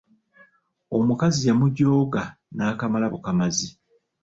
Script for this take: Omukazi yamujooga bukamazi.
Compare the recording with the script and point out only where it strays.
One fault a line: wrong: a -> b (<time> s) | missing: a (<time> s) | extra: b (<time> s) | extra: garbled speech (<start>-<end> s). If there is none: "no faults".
extra: n'akamala (2.5 s)